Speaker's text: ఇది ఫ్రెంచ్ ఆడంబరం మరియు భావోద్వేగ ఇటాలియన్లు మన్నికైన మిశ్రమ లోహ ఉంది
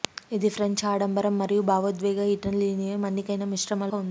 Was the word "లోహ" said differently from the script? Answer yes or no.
yes